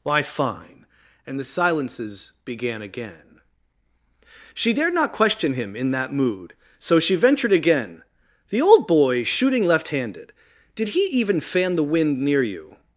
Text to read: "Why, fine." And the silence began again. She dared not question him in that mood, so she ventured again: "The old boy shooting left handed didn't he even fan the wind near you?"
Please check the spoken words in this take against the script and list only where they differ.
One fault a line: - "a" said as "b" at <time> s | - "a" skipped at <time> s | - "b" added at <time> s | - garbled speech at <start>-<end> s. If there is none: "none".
- "silence" said as "silences" at 1.4 s
- "didn't" said as "did" at 10.8 s